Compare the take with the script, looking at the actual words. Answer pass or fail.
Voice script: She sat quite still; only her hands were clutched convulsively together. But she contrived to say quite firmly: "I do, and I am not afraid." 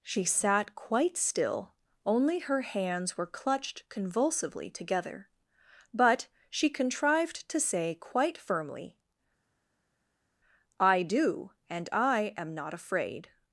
pass